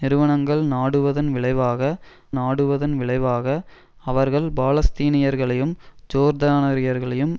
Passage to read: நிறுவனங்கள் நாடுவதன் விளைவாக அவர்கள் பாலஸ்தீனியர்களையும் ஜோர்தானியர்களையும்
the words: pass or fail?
fail